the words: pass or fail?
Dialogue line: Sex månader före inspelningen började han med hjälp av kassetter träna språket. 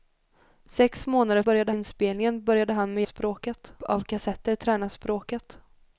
fail